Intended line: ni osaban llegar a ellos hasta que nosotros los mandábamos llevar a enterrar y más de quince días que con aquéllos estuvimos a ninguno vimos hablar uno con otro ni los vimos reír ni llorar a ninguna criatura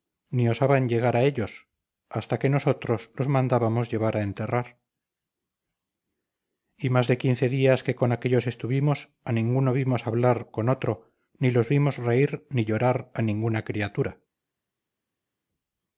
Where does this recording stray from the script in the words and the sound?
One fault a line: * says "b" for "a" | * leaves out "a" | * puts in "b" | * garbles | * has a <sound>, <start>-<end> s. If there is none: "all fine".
* leaves out "uno"